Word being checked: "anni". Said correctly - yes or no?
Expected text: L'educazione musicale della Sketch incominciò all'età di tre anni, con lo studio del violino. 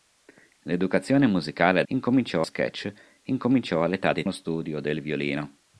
no